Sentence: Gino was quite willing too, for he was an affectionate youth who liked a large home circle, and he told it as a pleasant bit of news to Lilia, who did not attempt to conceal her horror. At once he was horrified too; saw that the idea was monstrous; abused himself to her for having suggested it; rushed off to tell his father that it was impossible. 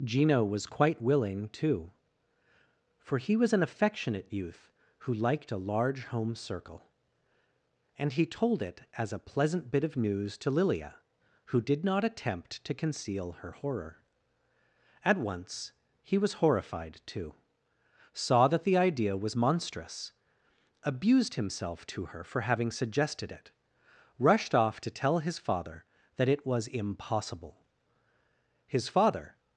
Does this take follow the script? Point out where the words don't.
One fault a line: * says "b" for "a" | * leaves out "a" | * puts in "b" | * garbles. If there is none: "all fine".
* puts in "His father"